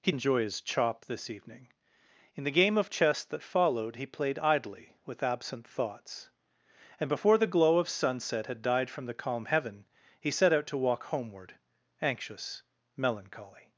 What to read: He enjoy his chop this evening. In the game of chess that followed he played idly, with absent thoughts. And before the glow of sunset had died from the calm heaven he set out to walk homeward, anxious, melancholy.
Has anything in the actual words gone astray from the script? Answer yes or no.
no